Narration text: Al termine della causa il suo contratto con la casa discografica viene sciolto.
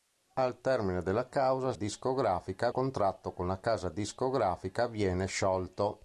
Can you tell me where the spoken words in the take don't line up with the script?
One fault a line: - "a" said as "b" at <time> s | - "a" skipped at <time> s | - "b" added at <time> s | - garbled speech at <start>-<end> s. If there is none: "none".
- "suo" said as "discografica" at 1.7 s